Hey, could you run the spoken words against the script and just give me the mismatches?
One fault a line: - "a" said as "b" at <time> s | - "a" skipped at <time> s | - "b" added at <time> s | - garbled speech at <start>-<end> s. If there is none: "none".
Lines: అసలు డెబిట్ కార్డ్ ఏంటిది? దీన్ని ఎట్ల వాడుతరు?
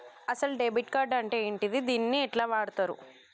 - "అంటే" added at 1.1 s